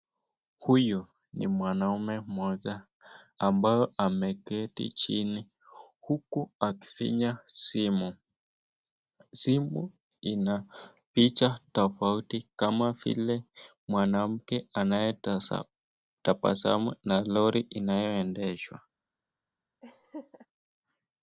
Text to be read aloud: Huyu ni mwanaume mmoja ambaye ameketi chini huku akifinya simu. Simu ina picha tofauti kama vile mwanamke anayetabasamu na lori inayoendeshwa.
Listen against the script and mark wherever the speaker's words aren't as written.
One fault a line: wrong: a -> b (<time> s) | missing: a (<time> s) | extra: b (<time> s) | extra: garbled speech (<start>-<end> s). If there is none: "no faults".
no faults